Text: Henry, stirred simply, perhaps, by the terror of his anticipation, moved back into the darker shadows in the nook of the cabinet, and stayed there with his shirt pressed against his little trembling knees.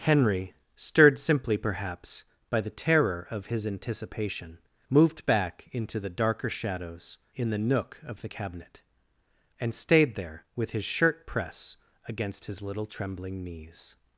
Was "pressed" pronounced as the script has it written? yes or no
no